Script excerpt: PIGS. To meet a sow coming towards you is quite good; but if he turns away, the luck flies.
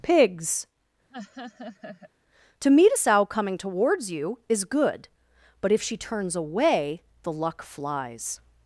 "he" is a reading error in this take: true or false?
true